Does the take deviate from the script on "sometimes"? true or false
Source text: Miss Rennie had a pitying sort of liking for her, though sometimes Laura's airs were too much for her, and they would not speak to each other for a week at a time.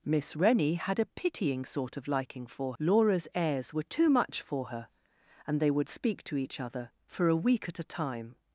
true